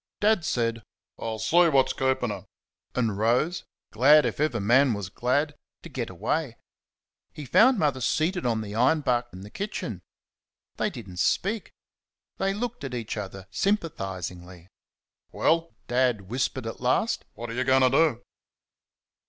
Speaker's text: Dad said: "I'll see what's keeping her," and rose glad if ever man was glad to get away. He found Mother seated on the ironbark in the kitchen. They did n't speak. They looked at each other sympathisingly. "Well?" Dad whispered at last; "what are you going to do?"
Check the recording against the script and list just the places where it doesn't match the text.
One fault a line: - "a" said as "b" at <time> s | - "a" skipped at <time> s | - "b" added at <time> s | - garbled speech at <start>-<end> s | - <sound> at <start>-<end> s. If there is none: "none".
none